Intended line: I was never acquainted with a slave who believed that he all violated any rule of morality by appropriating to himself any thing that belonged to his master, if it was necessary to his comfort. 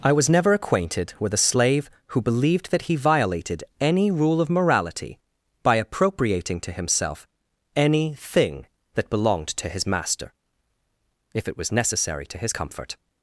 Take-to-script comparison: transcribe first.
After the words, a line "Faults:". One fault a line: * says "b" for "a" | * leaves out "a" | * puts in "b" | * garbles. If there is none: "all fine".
I was never acquainted with a slave who believed that he violated any rule of morality by appropriating to himself any thing that belonged to his master, if it was necessary to his comfort.
Faults:
* leaves out "all"